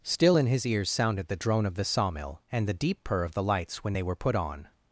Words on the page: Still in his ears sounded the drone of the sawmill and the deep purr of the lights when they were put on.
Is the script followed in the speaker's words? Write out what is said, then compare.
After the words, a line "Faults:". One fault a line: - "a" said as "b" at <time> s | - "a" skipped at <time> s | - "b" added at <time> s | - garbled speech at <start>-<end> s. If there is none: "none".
Still in his ears sounded the drone of the sawmill and the deep purr of the lights when they were put on.
Faults:
none